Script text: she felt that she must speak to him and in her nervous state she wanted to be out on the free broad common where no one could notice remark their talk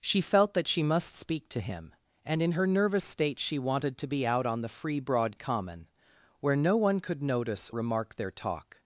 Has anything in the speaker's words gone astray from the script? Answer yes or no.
no